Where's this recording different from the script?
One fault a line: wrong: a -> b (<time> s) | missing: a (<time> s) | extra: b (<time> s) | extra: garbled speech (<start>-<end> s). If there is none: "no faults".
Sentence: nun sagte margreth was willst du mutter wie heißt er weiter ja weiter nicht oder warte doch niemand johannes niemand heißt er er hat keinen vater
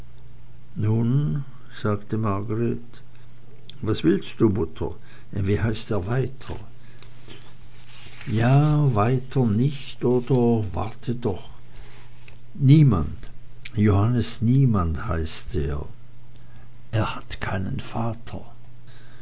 no faults